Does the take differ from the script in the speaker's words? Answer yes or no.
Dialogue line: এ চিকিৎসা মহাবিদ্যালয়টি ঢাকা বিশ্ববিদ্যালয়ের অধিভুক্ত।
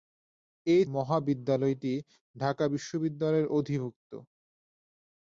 yes